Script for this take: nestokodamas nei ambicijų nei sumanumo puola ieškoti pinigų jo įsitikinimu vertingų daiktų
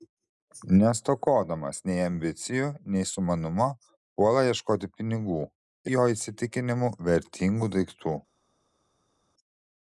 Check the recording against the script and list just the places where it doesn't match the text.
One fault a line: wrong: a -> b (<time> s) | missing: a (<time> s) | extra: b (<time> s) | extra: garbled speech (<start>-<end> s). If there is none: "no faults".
no faults